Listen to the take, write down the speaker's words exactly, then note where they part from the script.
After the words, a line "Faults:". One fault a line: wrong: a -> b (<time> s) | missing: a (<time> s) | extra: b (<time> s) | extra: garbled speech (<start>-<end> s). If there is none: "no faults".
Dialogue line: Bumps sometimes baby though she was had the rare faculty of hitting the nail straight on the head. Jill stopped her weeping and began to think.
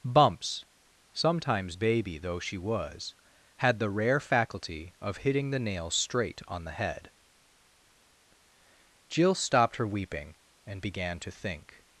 Bumps sometimes baby though she was had the rare faculty of hitting the nail straight on the head. Jill stopped her weeping and began to think.
Faults:
no faults